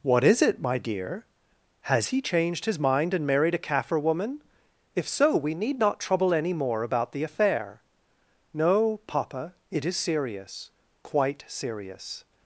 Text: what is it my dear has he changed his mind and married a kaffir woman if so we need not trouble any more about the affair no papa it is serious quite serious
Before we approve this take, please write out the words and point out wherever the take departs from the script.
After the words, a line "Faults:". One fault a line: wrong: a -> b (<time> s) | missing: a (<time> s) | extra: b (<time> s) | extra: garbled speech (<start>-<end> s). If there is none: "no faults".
what is it my dear has he changed his mind and married a kaffir woman if so we need not trouble any more about the affair no papa it is serious quite serious
Faults:
no faults